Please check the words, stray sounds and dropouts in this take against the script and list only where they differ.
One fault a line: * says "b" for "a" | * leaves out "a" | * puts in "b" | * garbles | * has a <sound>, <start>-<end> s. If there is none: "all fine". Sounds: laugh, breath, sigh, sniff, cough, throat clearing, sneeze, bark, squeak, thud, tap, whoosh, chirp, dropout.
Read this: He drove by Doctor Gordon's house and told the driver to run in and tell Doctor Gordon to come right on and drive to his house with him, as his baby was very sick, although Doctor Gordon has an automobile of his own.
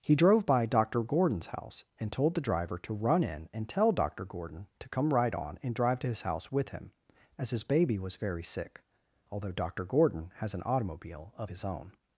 all fine